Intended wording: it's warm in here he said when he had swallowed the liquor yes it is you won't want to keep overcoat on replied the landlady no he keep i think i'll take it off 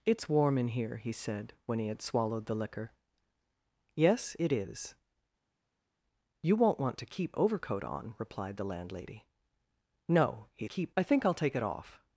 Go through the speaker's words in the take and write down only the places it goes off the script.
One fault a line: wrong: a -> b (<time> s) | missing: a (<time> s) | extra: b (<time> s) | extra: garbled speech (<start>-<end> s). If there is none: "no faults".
no faults